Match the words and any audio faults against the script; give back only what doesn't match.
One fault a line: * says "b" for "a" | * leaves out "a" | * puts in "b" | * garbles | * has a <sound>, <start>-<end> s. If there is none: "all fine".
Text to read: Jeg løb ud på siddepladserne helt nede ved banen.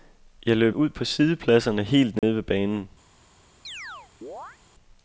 * has a dropout, 2.2-2.2 s
* has a chirp, 3.6-4.6 s